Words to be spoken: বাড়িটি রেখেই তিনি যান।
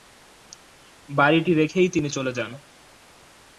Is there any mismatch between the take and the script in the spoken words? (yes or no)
yes